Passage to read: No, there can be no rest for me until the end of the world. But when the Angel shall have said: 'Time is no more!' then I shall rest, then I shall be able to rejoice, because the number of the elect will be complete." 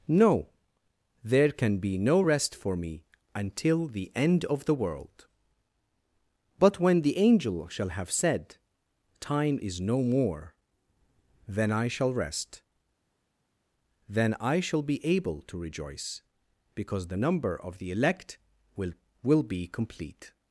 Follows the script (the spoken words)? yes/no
no